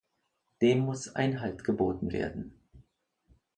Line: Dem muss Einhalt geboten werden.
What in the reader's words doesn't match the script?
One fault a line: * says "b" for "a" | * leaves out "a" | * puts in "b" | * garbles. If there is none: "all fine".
all fine